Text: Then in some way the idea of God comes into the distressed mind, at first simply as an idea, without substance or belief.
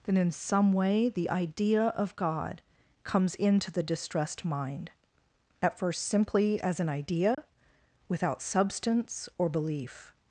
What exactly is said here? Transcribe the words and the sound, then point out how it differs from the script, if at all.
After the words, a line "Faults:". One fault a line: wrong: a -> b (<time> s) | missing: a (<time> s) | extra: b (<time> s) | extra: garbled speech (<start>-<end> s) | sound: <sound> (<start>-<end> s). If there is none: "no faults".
Then in some way the idea of God comes into the distressed mind, at first simply as an idea, without substance or belief.
Faults:
sound: dropout (7.3-7.4 s)